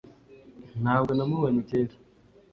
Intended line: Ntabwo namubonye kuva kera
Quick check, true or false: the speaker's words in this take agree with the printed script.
false